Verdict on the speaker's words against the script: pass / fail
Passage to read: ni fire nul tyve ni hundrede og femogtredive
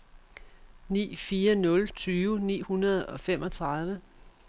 pass